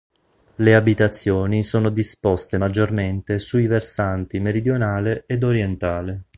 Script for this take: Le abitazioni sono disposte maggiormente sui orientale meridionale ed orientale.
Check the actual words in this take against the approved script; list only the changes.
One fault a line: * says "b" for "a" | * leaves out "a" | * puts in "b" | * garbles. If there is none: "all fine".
* says "versanti" for "orientale"